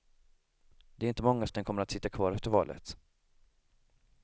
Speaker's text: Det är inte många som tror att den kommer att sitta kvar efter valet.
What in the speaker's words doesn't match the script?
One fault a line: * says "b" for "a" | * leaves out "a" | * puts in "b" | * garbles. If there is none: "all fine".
* leaves out "som tror"